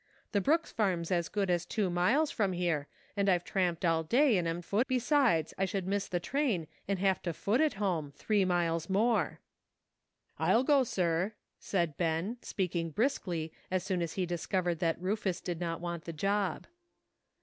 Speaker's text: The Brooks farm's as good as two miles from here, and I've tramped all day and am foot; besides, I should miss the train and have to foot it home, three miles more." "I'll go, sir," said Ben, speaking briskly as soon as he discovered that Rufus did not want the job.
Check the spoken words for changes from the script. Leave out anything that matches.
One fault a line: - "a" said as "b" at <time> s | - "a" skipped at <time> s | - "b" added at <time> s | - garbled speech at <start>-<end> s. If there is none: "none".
none